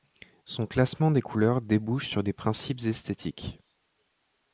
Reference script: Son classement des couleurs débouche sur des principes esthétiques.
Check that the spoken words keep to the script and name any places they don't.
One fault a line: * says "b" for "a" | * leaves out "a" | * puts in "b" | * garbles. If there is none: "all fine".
all fine